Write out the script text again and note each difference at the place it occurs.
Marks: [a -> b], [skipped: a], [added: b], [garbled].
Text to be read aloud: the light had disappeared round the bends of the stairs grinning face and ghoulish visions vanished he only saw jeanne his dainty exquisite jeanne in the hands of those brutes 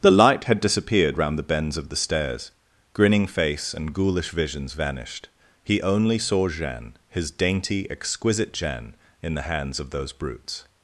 the light had disappeared round the bends of the stairs grinning face and ghoulish visions vanished he only saw jeanne his dainty exquisite jeanne in the hands of those brutes